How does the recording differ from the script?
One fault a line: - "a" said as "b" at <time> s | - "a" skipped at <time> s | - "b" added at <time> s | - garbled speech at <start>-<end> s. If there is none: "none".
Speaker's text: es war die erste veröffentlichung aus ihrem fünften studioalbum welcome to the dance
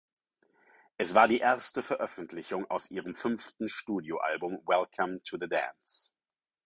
none